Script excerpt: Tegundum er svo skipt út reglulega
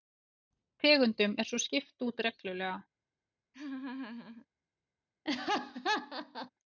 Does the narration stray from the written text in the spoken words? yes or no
no